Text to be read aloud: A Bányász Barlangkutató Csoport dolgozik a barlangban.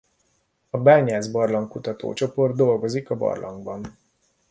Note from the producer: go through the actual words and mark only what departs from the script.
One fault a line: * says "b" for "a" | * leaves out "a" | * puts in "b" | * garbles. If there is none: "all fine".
all fine